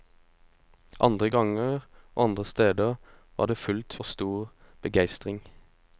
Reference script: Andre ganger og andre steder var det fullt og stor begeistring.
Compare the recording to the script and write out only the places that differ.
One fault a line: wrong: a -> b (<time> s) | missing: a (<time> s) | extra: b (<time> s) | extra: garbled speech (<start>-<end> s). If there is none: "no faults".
no faults